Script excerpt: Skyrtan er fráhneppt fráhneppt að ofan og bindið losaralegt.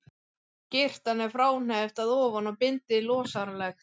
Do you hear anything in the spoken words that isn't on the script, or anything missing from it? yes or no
yes